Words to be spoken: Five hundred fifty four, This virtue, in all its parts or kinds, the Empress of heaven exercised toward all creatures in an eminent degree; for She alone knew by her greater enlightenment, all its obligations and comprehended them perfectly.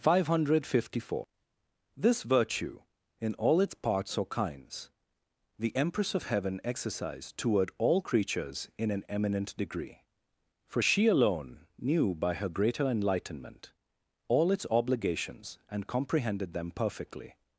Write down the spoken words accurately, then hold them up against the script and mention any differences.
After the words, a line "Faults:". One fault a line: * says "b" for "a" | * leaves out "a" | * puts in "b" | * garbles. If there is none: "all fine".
Five hundred fifty four, This virtue, in all its parts or kinds, the Empress of heaven exercised toward all creatures in an eminent degree; for She alone knew by her greater enlightenment, all its obligations and comprehended them perfectly.
Faults:
all fine